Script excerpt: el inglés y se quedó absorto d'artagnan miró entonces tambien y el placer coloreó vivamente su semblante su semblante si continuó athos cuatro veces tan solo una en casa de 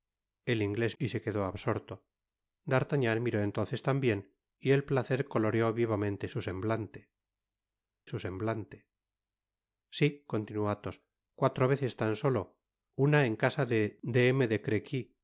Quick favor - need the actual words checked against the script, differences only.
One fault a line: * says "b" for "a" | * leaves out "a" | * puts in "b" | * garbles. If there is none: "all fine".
all fine